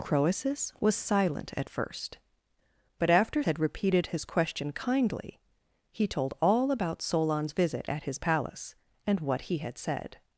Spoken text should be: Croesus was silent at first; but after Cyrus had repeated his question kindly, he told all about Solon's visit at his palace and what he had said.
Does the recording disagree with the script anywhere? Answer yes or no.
yes